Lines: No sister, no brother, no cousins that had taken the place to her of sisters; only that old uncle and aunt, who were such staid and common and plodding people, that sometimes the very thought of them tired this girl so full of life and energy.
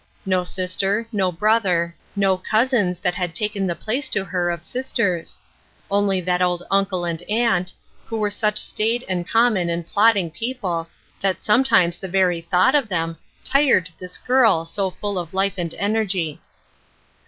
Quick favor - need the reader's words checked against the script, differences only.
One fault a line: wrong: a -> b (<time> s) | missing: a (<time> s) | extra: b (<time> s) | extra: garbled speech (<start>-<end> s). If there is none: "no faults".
no faults